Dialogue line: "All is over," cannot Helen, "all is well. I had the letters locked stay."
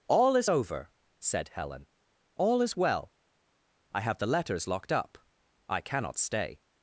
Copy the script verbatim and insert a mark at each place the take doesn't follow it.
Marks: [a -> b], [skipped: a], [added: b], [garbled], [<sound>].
"All is over," [cannot -> said] Helen, "all is well. I [had -> have] the letters locked [added: up I cannot] stay."